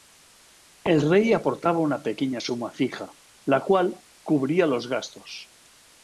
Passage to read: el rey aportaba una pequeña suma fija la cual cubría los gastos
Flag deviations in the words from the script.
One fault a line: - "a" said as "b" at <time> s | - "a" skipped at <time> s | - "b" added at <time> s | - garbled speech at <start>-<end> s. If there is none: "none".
none